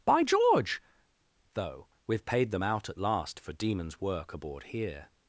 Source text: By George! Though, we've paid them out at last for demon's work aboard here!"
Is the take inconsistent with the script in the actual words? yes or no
no